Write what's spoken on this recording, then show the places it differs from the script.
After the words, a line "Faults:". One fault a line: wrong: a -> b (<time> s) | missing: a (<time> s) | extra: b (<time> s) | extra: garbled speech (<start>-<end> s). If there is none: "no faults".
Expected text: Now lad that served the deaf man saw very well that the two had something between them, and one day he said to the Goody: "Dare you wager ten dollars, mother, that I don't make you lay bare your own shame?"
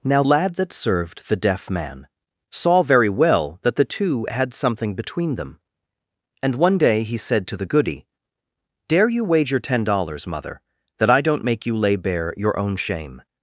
Now lad that served the deaf man saw very well that the two had something between them, and one day he said to the Goody: "Dare you wager ten dollars, mother, that I don't make you lay bare your own shame?"
Faults:
no faults